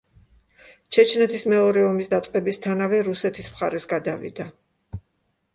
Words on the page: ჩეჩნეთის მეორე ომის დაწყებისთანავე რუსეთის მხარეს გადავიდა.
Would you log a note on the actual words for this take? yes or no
no